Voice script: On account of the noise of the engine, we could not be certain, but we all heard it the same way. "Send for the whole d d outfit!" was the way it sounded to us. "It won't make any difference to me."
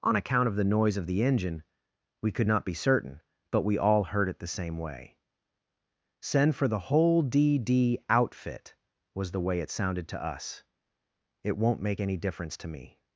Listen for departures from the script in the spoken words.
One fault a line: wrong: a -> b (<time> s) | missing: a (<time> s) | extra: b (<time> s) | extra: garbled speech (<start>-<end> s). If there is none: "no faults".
no faults